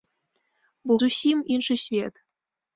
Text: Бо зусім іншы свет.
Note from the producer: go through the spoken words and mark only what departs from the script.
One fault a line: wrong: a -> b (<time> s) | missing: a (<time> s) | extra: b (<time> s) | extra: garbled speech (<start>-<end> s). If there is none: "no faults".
no faults